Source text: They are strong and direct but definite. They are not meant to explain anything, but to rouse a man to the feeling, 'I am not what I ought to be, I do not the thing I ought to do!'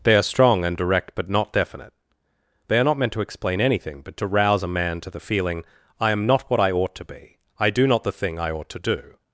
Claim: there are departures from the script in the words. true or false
true